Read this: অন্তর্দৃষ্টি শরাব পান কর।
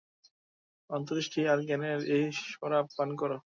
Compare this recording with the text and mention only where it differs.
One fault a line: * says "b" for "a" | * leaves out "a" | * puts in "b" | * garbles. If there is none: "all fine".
* puts in "আর জ্ঞানের এই"